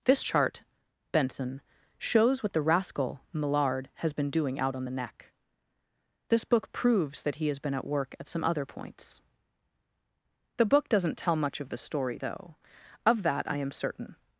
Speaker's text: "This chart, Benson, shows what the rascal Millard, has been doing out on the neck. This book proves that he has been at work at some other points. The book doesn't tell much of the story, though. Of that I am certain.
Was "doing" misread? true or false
false